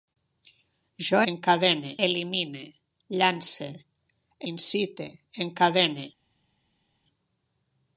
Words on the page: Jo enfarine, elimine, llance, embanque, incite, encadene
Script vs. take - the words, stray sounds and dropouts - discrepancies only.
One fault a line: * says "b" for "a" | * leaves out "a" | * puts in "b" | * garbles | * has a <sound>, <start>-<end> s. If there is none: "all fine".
* says "encadene" for "enfarine"
* leaves out "embanque"